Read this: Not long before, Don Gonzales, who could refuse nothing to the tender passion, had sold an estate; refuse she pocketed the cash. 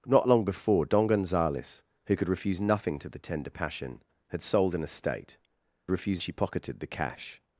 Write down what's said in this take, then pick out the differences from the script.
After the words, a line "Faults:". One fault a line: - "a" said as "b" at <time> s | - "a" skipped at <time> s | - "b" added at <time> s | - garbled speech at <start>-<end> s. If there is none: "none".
Not long before, Don Gonzales, who could refuse nothing to the tender passion, had sold an estate; refuse she pocketed the cash.
Faults:
none